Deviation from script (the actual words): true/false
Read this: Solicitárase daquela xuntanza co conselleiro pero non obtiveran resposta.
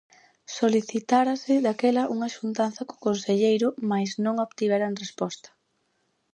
true